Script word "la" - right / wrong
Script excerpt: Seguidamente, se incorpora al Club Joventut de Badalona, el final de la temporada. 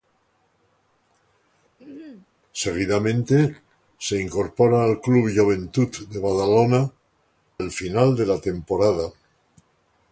right